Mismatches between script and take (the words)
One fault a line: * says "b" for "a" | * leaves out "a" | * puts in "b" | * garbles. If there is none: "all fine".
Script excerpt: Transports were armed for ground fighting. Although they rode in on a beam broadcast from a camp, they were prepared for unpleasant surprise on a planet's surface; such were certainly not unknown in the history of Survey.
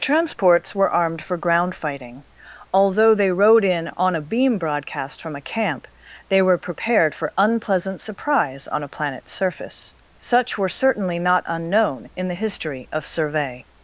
all fine